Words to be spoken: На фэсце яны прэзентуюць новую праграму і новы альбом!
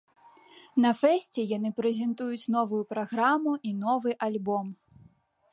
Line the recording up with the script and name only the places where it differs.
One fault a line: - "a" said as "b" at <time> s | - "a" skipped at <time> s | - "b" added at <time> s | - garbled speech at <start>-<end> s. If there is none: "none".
none